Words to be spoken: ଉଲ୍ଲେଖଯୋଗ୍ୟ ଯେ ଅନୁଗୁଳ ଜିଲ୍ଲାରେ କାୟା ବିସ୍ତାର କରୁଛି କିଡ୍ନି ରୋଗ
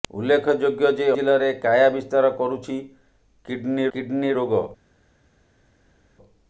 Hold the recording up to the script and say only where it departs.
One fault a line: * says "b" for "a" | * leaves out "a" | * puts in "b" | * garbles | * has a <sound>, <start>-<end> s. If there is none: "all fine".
* leaves out "ଅନୁଗୁଳ"
* puts in "କିଡ୍ନି"